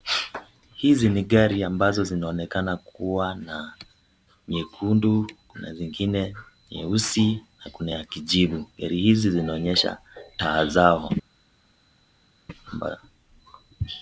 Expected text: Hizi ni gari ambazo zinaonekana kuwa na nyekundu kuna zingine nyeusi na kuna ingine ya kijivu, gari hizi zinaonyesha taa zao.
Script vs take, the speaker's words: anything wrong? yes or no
yes